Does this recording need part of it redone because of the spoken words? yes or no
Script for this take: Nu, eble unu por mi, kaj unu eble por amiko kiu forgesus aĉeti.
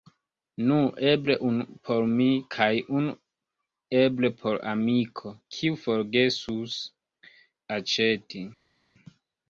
no